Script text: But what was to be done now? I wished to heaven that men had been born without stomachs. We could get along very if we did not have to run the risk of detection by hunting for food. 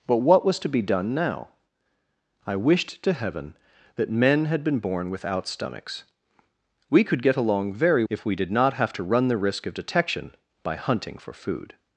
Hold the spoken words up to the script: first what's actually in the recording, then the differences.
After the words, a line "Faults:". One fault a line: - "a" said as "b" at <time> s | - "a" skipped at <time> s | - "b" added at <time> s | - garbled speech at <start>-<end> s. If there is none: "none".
But what was to be done now? I wished to heaven that men had been born without stomachs. We could get along very if we did not have to run the risk of detection by hunting for food.
Faults:
none